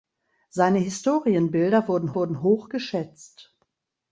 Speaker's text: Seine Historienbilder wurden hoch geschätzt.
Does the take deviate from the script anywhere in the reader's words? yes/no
yes